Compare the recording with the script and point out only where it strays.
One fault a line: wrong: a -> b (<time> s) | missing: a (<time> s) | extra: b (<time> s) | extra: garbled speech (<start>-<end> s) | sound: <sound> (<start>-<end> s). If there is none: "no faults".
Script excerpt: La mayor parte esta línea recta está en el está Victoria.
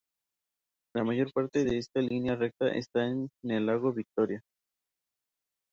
extra: de (1.6 s)
wrong: está -> lago (3.7 s)